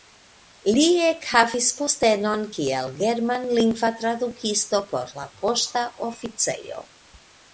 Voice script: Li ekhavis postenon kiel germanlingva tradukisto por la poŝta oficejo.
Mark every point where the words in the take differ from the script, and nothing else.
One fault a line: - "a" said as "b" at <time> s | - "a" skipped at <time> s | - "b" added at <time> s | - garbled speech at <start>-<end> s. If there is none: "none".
none